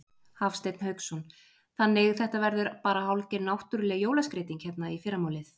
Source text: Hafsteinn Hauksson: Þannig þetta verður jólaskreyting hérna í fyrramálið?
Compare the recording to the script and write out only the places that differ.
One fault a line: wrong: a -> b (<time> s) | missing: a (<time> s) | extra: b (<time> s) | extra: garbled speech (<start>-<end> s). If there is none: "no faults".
extra: bara hálfgerð náttúruleg (2.9 s)